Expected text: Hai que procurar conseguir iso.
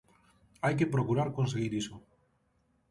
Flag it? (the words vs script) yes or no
no